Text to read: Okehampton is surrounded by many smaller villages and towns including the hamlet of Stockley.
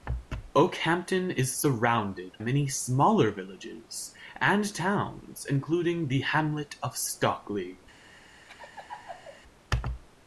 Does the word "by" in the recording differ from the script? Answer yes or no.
yes